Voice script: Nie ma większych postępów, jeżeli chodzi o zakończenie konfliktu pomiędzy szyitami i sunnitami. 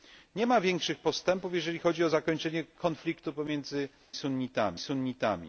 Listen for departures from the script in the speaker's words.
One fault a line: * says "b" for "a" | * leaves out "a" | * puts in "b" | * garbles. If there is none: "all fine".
* says "sunnitami" for "szyitami"